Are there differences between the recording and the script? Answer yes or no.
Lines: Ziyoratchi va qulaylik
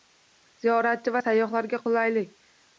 yes